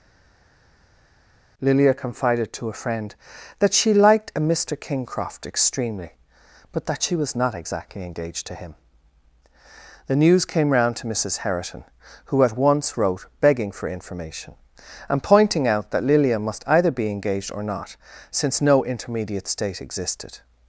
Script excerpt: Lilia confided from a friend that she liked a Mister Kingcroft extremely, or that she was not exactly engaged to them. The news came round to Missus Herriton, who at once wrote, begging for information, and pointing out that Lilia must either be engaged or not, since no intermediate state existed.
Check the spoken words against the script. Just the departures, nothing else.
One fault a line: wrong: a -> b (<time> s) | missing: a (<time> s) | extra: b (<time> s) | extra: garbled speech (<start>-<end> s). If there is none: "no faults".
wrong: from -> to (2.5 s)
wrong: or -> but (6.7 s)
wrong: them -> him (8.5 s)